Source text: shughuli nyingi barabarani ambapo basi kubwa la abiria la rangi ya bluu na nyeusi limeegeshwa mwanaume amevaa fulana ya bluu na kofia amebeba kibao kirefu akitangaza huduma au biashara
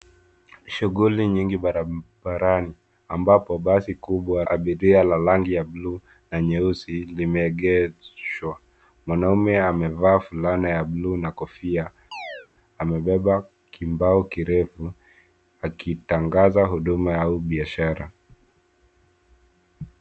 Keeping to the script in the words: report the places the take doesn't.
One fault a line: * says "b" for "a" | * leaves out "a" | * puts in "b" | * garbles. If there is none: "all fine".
* leaves out "la"